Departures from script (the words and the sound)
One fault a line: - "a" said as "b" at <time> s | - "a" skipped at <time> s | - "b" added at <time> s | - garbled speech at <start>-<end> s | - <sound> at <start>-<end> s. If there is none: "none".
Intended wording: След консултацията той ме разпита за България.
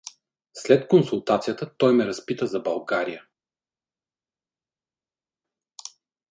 none